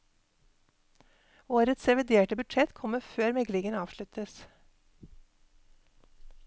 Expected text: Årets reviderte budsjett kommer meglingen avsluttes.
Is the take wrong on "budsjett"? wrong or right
right